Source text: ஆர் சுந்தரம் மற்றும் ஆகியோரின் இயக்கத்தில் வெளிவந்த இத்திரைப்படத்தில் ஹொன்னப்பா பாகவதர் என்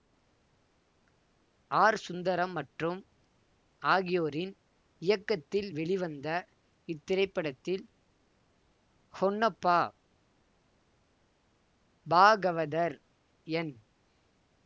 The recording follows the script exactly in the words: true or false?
true